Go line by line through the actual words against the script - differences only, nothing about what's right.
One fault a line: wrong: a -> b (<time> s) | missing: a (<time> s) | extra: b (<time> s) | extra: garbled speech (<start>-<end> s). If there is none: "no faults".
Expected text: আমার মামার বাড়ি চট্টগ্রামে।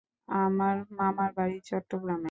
no faults